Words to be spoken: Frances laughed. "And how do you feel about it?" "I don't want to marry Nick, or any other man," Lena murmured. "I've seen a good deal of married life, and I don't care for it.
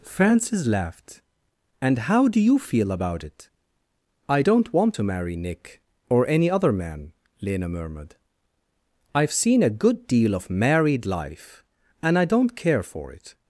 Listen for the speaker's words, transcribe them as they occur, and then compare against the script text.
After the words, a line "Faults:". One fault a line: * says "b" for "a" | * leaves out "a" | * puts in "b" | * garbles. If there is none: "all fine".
Frances laughed. "And how do you feel about it?" "I don't want to marry Nick, or any other man," Lena murmured. "I've seen a good deal of married life, and I don't care for it.
Faults:
all fine